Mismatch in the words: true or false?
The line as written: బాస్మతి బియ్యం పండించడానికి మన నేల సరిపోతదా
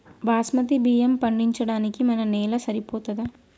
false